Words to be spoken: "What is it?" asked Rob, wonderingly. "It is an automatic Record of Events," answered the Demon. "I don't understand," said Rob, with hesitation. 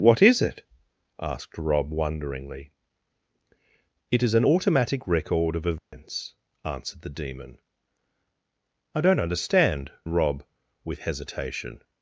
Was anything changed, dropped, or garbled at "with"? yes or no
no